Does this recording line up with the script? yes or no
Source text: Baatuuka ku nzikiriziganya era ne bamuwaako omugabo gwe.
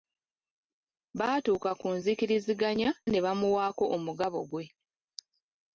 no